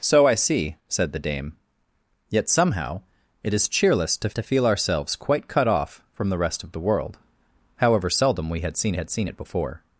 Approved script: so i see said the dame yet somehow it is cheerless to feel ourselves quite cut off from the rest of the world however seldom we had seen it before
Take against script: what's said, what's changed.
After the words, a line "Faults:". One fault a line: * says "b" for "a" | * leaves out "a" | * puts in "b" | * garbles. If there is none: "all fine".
so i see said the dame yet somehow it is cheerless to to feel ourselves quite cut off from the rest of the world however seldom we had seen had seen it before
Faults:
* puts in "to"
* puts in "had seen"